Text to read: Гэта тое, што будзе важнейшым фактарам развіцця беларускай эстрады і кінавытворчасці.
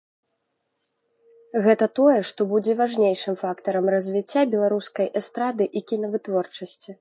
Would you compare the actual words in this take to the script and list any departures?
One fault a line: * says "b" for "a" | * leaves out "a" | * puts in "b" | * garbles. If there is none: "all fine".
all fine